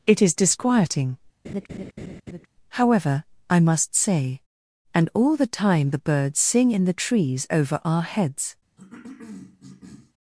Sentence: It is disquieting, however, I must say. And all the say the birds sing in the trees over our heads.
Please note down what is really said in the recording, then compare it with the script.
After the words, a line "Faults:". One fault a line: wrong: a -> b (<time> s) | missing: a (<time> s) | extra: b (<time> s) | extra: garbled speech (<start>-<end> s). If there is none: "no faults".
It is disquieting, however, I must say. And all the time the birds sing in the trees over our heads.
Faults:
wrong: say -> time (5.5 s)